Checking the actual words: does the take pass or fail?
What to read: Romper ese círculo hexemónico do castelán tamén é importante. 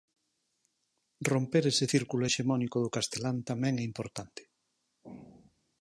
pass